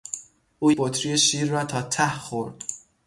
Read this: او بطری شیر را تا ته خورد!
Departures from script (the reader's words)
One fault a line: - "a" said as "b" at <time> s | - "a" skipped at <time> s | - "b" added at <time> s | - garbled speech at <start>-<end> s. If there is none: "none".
none